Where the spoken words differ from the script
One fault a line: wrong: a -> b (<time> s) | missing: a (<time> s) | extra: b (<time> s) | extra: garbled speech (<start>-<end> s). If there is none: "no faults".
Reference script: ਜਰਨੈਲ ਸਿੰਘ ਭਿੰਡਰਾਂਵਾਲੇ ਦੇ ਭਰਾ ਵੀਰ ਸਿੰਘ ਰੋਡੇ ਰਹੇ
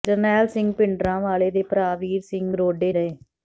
no faults